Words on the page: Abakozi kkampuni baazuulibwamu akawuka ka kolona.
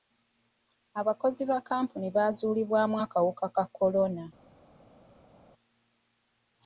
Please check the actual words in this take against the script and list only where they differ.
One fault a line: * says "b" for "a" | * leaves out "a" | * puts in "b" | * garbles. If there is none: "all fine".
* puts in "ba"